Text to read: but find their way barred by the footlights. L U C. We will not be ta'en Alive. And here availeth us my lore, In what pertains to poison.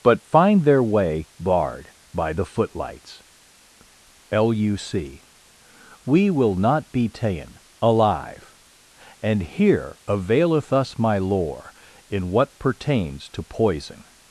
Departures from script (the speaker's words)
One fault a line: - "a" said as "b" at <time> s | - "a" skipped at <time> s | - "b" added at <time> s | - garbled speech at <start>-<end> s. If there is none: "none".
none